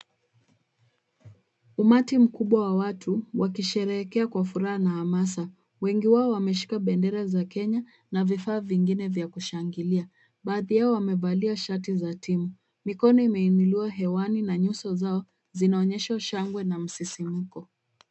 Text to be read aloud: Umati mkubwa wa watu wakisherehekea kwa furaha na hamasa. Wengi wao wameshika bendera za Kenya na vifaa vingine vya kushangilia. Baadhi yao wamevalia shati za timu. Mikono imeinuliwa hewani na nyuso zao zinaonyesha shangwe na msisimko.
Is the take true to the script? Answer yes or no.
yes